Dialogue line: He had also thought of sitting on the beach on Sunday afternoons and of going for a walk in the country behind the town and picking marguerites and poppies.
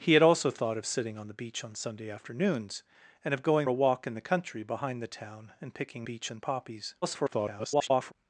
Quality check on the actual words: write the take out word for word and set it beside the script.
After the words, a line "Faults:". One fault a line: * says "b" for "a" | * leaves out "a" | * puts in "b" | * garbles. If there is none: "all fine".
He had also thought of sitting on the beach on Sunday afternoons and of going a walk in the country behind the town and picking beach and poppies. [garbled]
Faults:
* leaves out "for"
* says "beach" for "marguerites"
* garbles